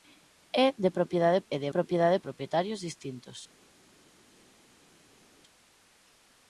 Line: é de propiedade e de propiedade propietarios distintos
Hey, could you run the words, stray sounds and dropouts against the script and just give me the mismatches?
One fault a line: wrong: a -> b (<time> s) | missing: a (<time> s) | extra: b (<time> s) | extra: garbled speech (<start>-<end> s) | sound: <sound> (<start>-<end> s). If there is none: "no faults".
no faults